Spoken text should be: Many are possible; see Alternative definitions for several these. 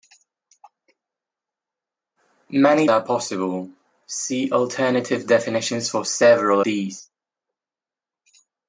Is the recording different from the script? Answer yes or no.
no